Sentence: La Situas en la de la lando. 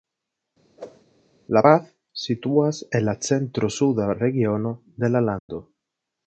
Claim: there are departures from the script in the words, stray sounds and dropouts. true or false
true